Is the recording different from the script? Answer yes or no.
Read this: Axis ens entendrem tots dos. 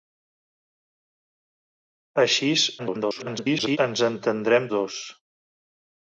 yes